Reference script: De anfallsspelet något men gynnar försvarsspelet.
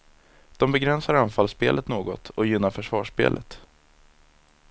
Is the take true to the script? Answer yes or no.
no